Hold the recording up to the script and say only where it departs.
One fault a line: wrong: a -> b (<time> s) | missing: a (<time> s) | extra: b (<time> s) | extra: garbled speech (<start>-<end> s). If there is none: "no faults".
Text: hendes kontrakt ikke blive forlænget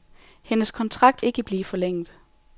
no faults